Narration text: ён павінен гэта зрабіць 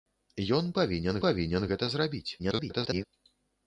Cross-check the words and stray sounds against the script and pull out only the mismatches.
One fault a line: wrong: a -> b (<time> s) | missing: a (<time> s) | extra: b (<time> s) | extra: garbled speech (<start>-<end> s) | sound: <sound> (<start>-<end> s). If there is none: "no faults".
extra: павінен (1.2 s)
extra: garbled speech (2.4-3.0 s)